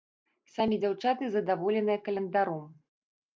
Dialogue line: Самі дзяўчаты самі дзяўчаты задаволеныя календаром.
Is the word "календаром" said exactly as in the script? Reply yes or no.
yes